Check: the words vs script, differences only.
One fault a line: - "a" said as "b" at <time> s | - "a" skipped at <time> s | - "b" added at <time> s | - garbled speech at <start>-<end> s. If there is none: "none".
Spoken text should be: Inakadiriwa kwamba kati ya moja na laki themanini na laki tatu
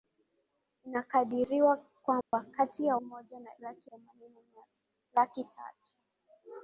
none